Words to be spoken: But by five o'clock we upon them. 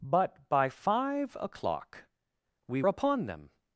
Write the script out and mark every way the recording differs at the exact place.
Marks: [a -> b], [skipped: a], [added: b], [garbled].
But by five o'clock we upon them.